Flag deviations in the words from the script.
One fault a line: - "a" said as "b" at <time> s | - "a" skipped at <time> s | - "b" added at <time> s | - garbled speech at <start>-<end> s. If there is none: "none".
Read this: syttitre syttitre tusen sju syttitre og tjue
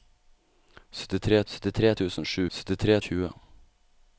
none